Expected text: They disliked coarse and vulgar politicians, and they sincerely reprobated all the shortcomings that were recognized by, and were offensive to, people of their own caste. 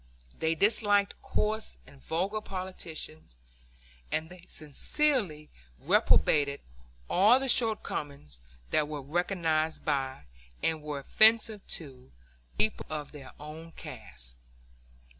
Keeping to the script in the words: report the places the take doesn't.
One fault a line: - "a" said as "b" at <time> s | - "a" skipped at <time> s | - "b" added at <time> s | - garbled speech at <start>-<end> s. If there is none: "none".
none